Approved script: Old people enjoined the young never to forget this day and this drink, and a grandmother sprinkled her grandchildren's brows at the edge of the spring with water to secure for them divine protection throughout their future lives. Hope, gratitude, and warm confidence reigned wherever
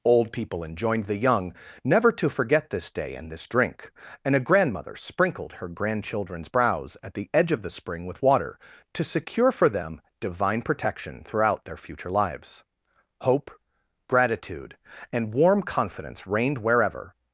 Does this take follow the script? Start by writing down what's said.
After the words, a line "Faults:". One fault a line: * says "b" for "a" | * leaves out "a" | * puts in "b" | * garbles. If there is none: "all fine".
Old people enjoined the young never to forget this day and this drink, and a grandmother sprinkled her grandchildren's brows at the edge of the spring with water to secure for them divine protection throughout their future lives. Hope, gratitude, and warm confidence reigned wherever
Faults:
all fine